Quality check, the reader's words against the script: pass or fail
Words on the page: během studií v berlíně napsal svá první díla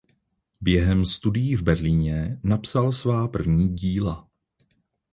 pass